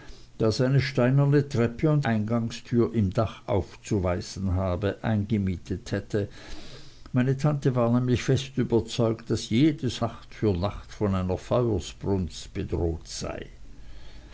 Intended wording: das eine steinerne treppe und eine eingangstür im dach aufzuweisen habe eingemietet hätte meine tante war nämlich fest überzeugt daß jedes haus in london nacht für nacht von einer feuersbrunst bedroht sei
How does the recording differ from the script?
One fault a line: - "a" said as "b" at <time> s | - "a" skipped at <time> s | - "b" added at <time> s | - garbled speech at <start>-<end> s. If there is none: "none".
- "eine" skipped at 2.1 s
- "haus in london" skipped at 10.0 s